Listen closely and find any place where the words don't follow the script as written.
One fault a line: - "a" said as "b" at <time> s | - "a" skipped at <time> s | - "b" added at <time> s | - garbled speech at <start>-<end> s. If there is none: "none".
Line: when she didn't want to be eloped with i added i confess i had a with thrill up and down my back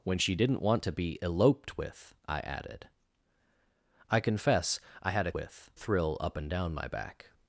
none